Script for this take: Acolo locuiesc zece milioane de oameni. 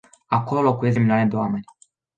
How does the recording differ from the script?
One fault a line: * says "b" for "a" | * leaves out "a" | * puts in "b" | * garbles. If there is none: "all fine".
* leaves out "zece"